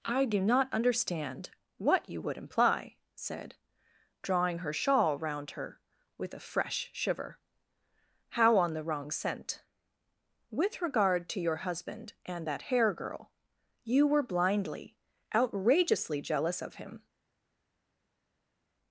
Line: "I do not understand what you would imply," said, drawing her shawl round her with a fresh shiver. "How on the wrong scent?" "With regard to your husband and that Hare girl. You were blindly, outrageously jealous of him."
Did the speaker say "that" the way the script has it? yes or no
yes